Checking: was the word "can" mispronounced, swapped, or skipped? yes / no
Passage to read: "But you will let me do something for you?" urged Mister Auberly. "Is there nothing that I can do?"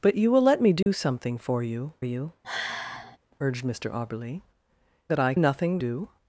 yes